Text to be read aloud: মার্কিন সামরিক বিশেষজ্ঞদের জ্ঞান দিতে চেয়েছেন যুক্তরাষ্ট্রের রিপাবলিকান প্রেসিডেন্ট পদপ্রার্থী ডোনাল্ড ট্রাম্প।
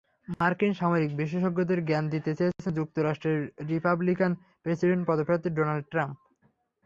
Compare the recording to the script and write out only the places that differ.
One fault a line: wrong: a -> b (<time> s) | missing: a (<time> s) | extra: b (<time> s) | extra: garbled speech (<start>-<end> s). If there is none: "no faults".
no faults